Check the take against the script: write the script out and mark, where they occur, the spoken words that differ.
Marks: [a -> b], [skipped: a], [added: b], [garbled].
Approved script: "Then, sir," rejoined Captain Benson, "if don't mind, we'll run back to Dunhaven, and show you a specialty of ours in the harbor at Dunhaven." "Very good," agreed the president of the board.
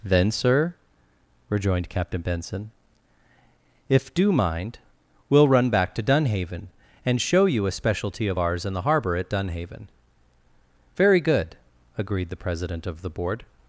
"Then, sir," rejoined Captain Benson, "if [don't -> do] mind, we'll run back to Dunhaven, and show you a specialty of ours in the harbor at Dunhaven." "Very good," agreed the president of the board.